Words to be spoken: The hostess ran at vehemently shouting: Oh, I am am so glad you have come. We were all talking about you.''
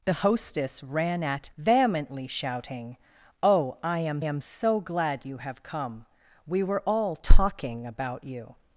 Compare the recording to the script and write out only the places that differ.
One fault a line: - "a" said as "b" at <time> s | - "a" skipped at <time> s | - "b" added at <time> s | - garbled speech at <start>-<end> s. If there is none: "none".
none